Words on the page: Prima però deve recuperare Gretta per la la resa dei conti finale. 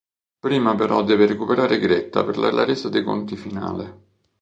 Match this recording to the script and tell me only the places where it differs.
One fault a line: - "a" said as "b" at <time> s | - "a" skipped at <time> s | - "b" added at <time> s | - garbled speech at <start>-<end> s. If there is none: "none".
none